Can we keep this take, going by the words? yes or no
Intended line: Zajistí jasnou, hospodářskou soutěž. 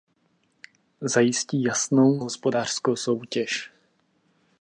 yes